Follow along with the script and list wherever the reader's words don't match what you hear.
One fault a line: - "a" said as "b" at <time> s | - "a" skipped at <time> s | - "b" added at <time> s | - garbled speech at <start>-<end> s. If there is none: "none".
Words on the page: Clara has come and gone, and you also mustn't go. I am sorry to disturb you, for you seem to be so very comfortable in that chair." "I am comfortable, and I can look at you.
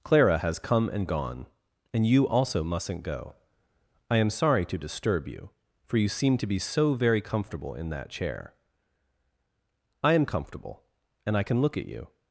none